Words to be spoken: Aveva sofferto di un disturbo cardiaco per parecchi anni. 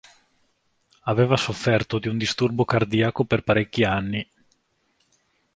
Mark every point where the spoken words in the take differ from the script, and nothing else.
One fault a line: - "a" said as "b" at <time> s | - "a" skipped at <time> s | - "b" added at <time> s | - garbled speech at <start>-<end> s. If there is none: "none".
none